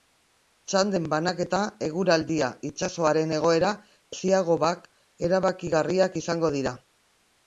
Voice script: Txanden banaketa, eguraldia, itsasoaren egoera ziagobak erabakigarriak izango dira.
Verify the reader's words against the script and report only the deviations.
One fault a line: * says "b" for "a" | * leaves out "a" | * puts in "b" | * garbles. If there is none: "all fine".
all fine